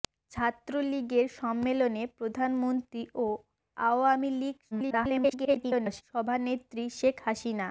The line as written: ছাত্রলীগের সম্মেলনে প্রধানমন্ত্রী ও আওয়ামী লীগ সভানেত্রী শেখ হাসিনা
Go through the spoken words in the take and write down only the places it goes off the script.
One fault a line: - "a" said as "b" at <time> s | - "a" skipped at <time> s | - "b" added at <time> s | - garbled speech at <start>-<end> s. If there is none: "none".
- garbled speech at 4.7-6.0 s